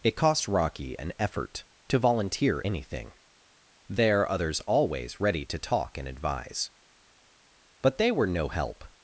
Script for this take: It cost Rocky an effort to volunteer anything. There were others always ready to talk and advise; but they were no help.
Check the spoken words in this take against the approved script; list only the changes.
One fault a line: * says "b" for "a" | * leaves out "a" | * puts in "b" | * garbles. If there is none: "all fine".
* leaves out "were"